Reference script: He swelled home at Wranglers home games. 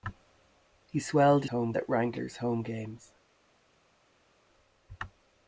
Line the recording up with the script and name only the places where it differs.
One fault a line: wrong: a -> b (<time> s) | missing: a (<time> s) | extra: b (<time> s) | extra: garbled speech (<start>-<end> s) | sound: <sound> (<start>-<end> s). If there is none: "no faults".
no faults